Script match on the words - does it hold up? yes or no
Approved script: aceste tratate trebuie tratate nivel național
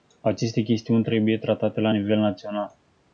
no